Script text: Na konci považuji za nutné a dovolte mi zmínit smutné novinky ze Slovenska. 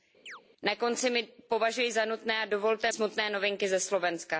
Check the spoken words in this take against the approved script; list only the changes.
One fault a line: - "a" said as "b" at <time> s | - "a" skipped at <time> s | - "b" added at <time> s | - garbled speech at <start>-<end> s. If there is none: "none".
- "mi zmínit" skipped at 2.9 s